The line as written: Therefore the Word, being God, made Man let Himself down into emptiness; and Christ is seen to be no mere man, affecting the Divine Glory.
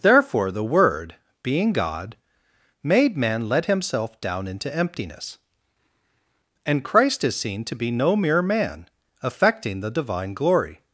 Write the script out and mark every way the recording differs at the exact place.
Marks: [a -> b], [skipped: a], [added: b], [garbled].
Therefore the Word, being God, made Man let Himself down into emptiness; and Christ is seen to be no mere man, affecting the Divine Glory.